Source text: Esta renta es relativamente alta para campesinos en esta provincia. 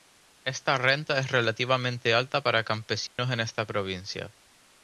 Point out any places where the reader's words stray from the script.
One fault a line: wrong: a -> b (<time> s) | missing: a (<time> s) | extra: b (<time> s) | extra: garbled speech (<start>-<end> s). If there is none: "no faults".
no faults